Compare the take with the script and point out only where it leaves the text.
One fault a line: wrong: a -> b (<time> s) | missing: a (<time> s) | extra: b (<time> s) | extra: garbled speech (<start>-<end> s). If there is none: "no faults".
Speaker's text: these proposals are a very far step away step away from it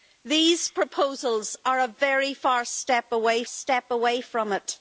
no faults